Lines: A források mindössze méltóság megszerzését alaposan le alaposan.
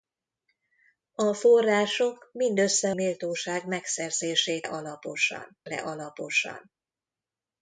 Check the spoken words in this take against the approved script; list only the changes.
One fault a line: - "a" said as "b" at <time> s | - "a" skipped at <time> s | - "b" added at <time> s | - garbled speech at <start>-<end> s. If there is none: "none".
none